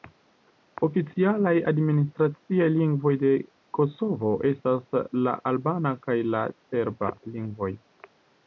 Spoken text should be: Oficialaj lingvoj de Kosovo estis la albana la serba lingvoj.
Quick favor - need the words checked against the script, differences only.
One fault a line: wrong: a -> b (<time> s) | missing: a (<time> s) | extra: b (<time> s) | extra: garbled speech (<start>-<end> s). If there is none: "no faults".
extra: administraciaj (1.7 s)
wrong: estis -> estas (4.5 s)
extra: kaj (6.1 s)